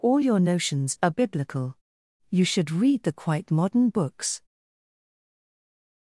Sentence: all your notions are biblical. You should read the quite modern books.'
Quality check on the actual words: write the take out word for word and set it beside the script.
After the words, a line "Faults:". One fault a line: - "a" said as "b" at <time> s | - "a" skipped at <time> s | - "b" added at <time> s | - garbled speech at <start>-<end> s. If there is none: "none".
all your notions are biblical. You should read the quite modern books.'
Faults:
none